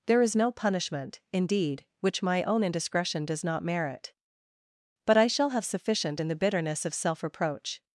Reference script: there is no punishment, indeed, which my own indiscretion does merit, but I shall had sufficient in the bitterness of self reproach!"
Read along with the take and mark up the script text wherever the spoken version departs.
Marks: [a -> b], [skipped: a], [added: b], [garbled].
there is no punishment, indeed, which my own indiscretion does [added: not] merit, but I shall [had -> have] sufficient in the bitterness of self reproach!"